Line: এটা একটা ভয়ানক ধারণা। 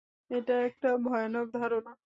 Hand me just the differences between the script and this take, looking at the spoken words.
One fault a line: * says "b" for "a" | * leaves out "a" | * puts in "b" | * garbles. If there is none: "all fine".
all fine